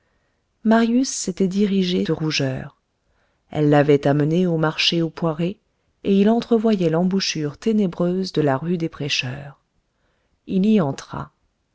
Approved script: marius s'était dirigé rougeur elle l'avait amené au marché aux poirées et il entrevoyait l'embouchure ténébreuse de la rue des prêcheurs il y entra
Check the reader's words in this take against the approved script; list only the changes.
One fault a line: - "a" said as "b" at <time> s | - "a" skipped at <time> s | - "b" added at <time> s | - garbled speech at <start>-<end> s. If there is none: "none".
none